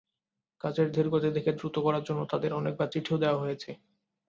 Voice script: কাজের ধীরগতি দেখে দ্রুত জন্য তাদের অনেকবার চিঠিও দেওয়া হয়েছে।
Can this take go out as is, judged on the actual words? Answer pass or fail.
fail